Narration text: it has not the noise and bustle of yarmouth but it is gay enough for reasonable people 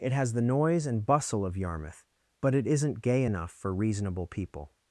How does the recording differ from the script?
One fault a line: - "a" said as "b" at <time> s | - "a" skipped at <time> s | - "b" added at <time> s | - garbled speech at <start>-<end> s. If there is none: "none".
- "not" skipped at 0.3 s
- "is" said as "isn't" at 2.7 s